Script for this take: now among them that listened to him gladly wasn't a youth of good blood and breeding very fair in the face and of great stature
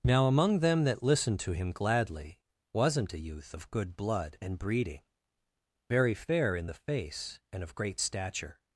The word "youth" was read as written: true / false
true